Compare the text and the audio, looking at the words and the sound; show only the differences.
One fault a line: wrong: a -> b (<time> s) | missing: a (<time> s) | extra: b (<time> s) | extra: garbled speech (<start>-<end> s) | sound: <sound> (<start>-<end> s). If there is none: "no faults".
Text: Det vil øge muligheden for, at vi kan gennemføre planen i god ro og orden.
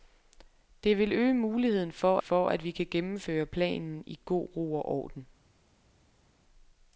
extra: for (2.2 s)